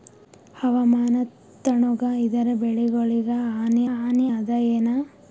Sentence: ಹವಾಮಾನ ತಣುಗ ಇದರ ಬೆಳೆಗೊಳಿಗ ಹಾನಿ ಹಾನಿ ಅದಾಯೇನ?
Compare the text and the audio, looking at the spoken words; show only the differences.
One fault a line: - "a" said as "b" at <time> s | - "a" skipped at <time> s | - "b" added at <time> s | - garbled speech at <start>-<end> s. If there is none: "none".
none